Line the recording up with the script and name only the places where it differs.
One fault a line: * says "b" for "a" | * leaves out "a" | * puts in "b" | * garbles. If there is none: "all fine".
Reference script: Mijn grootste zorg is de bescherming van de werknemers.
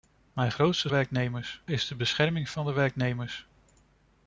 * says "werknemers" for "zorg"